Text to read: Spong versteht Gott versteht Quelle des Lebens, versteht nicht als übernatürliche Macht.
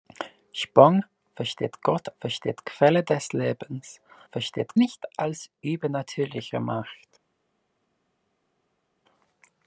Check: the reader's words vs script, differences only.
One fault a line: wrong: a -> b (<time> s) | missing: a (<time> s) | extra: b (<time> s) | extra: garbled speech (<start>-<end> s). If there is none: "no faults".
no faults